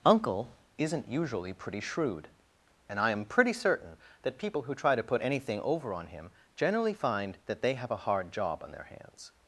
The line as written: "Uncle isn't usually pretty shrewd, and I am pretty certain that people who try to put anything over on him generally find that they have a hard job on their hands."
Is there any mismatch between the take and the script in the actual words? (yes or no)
no